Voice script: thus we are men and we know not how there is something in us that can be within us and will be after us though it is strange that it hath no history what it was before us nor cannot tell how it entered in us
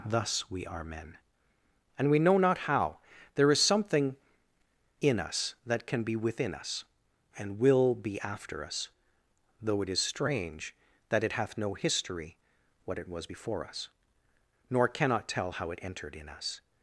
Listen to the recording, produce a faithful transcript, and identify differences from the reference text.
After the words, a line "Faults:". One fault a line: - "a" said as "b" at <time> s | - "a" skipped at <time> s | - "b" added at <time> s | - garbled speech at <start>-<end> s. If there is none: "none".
thus we are men and we know not how there is something in us that can be within us and will be after us though it is strange that it hath no history what it was before us nor cannot tell how it entered in us
Faults:
none